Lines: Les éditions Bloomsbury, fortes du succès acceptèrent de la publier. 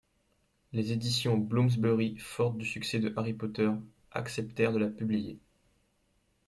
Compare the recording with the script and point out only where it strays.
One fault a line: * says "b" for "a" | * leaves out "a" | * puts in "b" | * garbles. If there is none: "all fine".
* puts in "de Harry Potter"